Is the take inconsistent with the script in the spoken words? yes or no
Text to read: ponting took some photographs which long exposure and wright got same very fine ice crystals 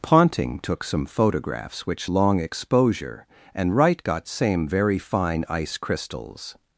no